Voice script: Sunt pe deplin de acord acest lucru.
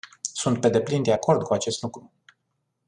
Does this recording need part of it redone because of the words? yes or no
yes